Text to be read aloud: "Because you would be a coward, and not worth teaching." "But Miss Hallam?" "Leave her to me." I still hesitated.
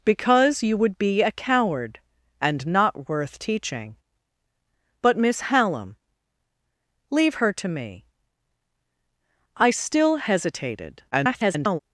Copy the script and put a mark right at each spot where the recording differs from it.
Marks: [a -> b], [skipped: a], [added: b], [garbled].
"Because you would be a coward, and not worth teaching." "But Miss Hallam?" "Leave her to me." I still hesitated. [garbled]